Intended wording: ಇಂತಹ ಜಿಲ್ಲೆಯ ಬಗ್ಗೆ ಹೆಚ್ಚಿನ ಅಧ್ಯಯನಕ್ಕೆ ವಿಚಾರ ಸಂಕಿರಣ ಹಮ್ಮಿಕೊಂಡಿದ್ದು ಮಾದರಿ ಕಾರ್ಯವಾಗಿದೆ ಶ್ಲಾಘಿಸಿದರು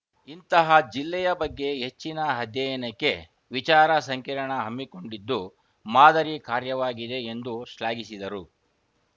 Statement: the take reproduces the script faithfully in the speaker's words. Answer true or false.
false